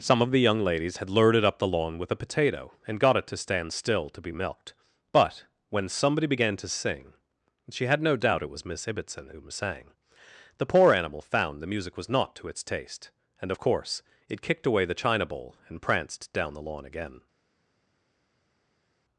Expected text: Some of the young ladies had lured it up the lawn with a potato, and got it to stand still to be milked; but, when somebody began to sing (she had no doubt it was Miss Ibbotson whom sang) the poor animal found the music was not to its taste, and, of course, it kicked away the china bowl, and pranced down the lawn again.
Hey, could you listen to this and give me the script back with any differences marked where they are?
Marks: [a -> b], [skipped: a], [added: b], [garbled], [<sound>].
Some of the young ladies had lured it up the lawn with a potato, and got it to stand still to be milked; but, when somebody began to sing (she had no doubt it was Miss Ibbotson whom sang) the poor animal found the music was not to its taste, and, of course, it kicked away the china bowl, and pranced down the lawn again.